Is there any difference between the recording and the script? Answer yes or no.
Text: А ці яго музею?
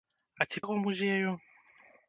no